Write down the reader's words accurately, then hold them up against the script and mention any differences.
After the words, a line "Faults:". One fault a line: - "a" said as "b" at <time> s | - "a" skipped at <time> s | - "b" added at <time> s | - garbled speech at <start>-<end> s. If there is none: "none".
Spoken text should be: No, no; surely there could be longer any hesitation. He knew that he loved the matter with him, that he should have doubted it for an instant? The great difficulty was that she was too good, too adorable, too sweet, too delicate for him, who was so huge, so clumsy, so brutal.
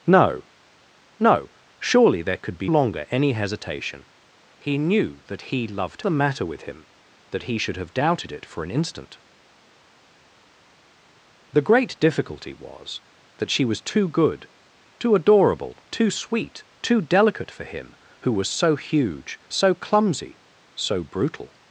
No, no; surely there could be longer any hesitation. He knew that he loved the matter with him, that he should have doubted it for an instant? The great difficulty was that she was too good, too adorable, too sweet, too delicate for him, who was so huge, so clumsy, so brutal.
Faults:
none